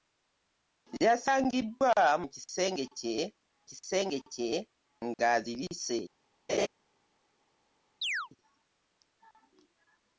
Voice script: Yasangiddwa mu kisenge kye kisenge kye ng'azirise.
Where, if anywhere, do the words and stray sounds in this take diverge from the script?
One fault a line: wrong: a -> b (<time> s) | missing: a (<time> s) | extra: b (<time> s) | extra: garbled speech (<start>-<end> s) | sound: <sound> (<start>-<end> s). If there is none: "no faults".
sound: laugh (6.5-6.7 s)
sound: chirp (8.0-8.3 s)